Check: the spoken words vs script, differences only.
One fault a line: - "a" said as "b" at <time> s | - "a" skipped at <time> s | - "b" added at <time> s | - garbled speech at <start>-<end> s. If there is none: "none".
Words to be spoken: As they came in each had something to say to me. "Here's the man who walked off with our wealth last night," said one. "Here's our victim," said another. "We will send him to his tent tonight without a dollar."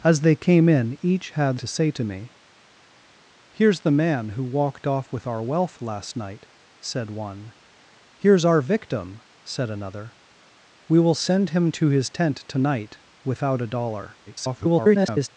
- "something" skipped at 1.6 s
- garbled speech at 14.3-15.3 s